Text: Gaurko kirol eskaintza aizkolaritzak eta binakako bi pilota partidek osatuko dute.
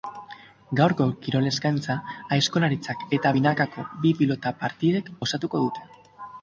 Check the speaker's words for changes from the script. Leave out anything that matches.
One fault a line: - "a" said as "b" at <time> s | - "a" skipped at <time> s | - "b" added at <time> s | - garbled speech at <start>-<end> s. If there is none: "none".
none